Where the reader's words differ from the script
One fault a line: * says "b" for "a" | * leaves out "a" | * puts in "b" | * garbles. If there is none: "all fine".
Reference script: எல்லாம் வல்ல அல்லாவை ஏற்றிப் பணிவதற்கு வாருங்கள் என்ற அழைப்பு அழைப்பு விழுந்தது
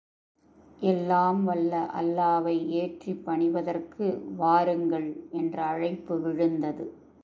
* leaves out "அழைப்பு"